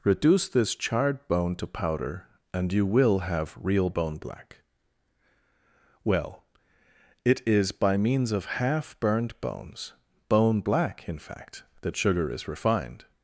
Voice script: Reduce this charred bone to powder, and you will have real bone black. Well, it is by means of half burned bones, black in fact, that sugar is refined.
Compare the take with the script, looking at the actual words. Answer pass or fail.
fail